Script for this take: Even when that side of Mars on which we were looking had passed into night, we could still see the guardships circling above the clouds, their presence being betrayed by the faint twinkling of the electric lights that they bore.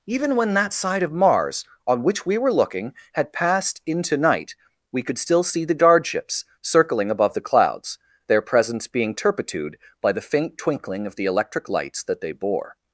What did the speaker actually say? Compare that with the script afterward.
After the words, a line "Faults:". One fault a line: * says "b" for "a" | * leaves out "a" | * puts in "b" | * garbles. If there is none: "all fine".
Even when that side of Mars on which we were looking had passed into night, we could still see the guardships circling above the clouds, their presence being turpitude by the faint twinkling of the electric lights that they bore.
Faults:
* says "turpitude" for "betrayed"